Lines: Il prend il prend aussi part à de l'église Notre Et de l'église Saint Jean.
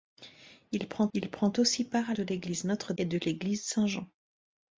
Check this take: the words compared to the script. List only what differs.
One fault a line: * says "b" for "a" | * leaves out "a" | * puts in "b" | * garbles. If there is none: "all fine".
all fine